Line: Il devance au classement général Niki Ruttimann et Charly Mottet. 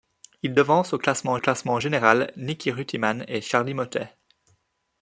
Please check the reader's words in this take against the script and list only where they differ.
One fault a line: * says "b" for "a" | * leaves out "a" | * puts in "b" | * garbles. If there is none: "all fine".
* puts in "classement"